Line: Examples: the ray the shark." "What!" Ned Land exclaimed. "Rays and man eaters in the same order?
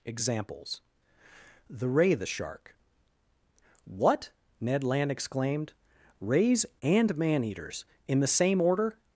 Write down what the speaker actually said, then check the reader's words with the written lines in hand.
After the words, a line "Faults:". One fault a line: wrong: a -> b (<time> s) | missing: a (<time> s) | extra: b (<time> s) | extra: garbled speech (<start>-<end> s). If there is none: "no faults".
Examples: the ray the shark." "What!" Ned Land exclaimed. "Rays and man eaters in the same order?
Faults:
no faults